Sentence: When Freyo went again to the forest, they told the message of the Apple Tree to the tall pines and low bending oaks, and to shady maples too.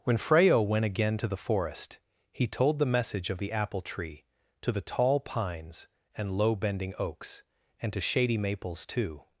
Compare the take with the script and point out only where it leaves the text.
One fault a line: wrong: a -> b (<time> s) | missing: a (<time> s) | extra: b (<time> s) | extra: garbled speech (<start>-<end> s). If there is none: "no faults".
wrong: they -> he (2.3 s)